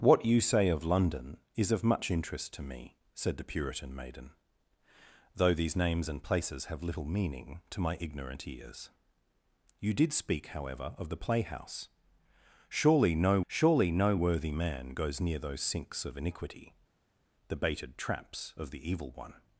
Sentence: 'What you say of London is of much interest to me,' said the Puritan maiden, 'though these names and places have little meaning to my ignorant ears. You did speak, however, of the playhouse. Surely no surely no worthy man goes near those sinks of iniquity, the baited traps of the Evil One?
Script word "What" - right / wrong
right